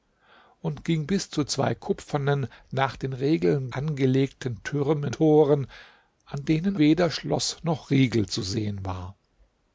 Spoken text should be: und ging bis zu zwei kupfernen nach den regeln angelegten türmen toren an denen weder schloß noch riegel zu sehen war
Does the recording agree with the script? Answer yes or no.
yes